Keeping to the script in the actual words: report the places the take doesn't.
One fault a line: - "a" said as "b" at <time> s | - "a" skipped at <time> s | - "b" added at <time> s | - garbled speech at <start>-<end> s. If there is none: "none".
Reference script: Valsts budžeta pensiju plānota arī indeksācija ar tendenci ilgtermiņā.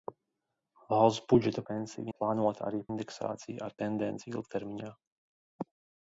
none